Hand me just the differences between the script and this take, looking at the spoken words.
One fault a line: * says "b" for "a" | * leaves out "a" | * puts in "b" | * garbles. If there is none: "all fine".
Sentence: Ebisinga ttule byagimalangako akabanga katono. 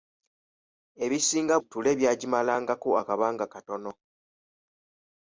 all fine